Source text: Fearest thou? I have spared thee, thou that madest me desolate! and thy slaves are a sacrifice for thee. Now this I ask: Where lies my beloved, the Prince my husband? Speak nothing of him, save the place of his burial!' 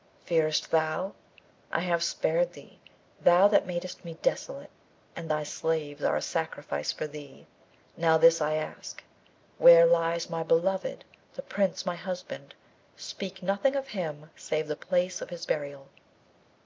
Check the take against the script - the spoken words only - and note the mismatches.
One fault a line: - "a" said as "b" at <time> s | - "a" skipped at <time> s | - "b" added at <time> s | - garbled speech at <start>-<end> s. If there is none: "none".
none